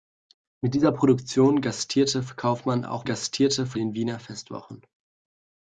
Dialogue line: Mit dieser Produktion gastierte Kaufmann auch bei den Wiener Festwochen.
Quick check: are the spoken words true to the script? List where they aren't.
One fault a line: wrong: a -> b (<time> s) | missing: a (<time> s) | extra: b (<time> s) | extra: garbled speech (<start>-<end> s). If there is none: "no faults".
wrong: bei -> gastierte (3.0 s)